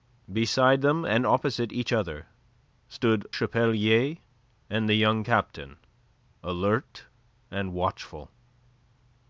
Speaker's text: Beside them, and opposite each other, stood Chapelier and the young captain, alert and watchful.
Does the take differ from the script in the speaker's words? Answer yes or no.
no